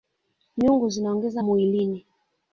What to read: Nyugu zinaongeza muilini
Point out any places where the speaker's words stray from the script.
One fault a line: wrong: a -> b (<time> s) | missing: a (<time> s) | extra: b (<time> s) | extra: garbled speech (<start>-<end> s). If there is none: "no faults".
no faults